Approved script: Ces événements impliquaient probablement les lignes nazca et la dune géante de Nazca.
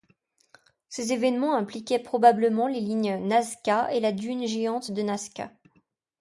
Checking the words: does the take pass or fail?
pass